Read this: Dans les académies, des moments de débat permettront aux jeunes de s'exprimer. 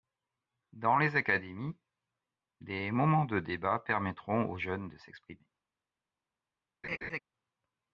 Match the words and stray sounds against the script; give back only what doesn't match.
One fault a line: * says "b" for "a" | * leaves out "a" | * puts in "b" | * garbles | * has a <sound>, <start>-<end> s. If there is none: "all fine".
* has a laugh, 6.8-7.2 s